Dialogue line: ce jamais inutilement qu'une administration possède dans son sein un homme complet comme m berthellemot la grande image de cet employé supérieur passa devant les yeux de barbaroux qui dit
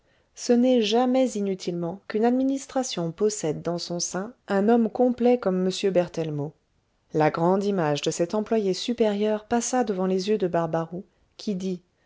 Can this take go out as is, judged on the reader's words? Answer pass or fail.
fail